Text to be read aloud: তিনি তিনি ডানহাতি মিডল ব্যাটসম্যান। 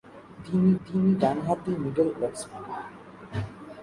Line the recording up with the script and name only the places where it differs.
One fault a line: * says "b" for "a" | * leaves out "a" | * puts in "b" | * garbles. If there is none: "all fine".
all fine